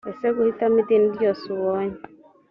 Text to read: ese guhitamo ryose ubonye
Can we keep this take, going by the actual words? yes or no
no